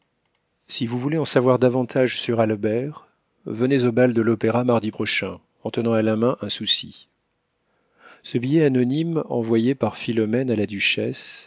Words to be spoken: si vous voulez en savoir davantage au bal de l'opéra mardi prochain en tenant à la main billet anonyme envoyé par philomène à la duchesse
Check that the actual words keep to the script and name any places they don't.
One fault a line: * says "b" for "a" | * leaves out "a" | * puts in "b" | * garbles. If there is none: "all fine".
* puts in "sur albert venez"
* puts in "un souci ce"